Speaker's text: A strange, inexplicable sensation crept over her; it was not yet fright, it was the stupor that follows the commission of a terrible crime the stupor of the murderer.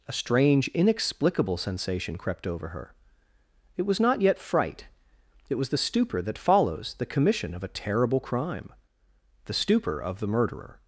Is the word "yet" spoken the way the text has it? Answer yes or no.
yes